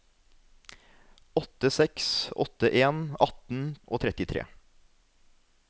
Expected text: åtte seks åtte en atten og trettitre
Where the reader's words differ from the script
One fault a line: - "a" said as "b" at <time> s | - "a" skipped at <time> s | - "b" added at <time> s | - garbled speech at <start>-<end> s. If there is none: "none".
none